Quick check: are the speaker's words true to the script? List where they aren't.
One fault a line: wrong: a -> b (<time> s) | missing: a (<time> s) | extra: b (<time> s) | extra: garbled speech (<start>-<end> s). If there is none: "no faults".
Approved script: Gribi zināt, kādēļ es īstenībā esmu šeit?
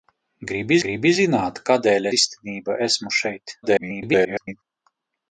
extra: gribi (0.8 s)
missing: es (2.1 s)
extra: garbled speech (3.6-4.6 s)